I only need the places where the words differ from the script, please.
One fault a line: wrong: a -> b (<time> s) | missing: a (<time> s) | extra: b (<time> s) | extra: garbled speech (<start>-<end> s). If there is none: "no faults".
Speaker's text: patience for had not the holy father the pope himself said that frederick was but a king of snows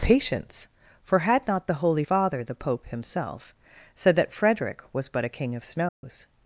no faults